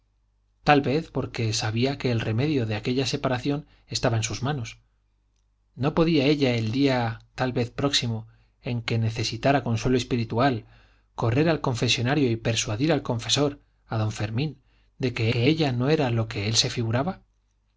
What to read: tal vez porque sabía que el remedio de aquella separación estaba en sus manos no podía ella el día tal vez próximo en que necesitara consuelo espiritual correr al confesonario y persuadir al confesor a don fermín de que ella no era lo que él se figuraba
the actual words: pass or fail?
fail